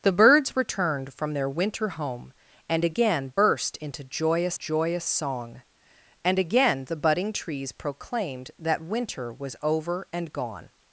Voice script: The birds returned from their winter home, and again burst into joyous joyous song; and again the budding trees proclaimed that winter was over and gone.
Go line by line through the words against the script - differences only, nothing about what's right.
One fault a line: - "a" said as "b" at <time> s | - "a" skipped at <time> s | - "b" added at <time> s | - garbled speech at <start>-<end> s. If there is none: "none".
none